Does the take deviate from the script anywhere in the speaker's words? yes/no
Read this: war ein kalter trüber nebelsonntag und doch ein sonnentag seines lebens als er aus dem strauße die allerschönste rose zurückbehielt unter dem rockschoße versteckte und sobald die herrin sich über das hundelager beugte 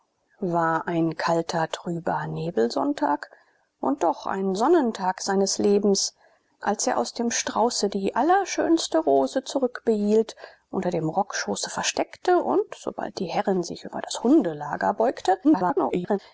yes